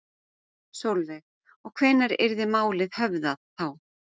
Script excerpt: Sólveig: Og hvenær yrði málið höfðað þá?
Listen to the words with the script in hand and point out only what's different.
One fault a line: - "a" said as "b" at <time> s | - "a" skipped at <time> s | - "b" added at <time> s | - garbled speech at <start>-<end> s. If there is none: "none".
none